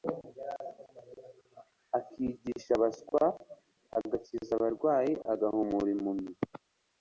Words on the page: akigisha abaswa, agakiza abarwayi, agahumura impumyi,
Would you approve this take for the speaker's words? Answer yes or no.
yes